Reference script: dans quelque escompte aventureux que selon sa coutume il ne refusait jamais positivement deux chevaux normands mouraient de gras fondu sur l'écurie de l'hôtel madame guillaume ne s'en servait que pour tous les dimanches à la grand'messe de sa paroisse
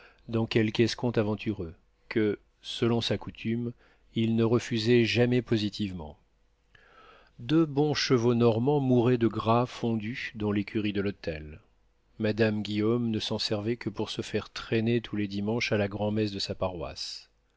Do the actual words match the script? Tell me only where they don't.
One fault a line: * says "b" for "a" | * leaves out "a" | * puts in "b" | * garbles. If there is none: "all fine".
* puts in "bons"
* says "dans" for "sur"
* puts in "se faire traîner"